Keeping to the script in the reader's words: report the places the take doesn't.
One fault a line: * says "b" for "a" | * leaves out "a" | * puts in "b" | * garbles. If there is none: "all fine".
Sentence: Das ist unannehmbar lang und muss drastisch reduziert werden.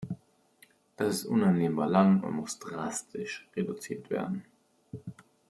all fine